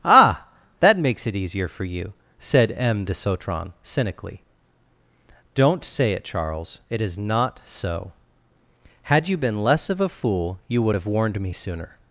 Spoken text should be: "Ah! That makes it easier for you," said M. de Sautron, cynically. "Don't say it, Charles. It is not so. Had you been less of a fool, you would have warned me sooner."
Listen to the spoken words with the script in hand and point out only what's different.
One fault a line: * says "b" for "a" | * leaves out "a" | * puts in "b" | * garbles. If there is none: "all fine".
all fine